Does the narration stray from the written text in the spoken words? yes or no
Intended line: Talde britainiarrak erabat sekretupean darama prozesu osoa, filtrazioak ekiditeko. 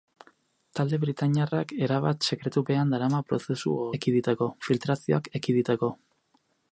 yes